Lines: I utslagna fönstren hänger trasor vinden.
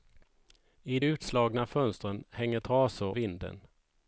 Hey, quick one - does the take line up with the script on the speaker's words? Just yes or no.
yes